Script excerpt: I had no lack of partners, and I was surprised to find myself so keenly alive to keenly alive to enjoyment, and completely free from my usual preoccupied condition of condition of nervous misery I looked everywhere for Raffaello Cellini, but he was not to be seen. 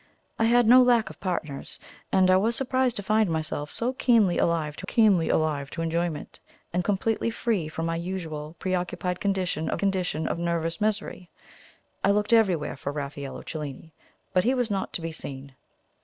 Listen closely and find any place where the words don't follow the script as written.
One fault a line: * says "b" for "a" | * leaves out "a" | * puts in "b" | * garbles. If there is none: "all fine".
all fine